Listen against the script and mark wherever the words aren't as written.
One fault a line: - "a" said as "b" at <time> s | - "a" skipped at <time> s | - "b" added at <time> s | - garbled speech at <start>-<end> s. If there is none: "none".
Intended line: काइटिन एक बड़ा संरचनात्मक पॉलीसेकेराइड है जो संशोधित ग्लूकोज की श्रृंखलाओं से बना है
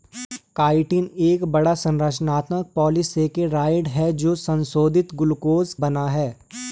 - "की श्रृंखलाओं से" skipped at 5.7 s